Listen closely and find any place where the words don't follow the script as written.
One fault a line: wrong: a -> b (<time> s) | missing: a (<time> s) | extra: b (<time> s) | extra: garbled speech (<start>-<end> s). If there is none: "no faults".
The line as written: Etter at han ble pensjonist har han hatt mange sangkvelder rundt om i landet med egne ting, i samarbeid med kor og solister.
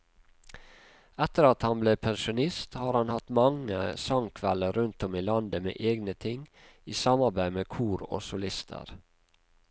no faults